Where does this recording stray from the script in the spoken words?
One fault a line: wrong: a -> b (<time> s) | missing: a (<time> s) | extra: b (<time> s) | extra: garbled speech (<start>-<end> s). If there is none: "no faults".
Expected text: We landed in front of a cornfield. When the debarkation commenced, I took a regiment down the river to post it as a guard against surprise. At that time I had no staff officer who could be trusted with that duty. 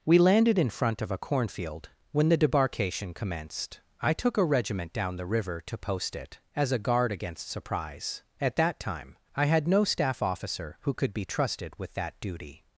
no faults